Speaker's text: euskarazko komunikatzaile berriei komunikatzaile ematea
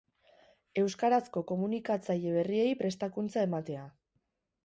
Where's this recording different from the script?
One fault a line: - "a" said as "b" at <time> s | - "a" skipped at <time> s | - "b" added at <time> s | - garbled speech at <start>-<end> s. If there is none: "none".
- "komunikatzaile" said as "prestakuntza" at 2.8 s